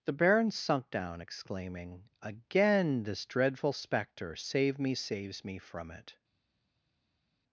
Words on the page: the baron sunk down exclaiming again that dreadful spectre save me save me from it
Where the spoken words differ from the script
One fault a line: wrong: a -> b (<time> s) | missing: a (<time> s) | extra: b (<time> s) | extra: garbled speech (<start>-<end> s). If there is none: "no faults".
wrong: that -> this (3.0 s)
wrong: save -> saves (4.9 s)